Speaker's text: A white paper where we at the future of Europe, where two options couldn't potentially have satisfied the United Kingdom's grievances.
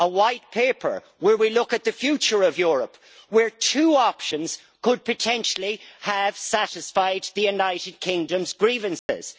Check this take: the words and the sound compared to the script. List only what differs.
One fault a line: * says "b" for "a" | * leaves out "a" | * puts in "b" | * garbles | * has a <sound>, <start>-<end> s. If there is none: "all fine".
* puts in "look"
* says "could" for "couldn't"
* has a dropout, 9.0-9.1 s